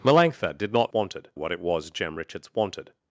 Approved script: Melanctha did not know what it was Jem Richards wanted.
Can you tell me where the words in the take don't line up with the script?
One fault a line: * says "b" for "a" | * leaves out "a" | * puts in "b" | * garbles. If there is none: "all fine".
* says "wanted" for "know"